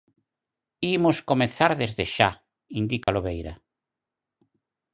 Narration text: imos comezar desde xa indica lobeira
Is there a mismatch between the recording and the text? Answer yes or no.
no